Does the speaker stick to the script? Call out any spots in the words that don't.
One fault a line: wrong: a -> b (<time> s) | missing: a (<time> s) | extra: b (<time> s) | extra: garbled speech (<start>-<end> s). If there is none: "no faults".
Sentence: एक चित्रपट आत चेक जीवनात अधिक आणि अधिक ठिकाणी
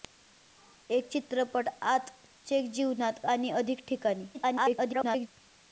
missing: अधिक (3.2 s)
extra: garbled speech (4.3-5.3 s)